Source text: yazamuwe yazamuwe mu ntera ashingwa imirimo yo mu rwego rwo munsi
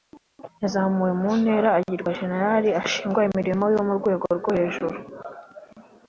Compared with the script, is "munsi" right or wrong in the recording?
wrong